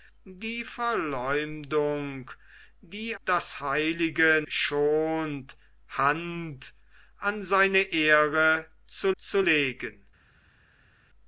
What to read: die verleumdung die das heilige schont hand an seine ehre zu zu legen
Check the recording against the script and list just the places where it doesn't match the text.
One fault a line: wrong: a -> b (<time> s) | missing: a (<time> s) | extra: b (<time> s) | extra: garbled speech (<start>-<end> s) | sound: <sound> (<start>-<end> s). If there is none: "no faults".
no faults